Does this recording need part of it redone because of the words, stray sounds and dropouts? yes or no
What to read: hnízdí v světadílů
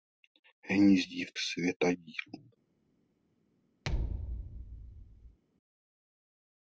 yes